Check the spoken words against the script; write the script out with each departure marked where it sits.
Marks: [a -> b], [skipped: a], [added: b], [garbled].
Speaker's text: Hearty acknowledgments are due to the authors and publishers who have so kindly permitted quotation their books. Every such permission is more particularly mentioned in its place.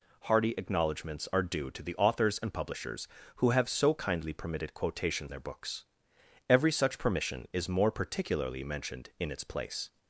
Hearty acknowledgments are due to the authors and publishers who have so kindly permitted quotation their books. Every such permission is more particularly mentioned in its place.